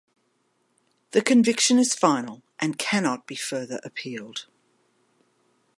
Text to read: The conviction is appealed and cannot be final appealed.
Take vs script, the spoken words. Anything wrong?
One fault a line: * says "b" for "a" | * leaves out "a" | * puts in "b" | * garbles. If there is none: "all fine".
* says "final" for "appealed"
* says "further" for "final"